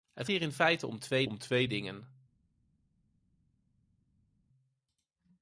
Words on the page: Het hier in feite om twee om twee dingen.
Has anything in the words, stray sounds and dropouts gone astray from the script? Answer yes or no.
no